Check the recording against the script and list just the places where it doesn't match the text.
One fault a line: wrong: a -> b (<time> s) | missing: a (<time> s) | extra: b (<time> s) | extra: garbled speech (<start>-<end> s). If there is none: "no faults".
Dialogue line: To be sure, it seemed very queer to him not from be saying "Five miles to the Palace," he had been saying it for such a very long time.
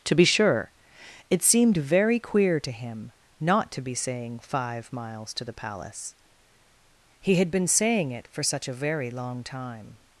wrong: from -> to (3.7 s)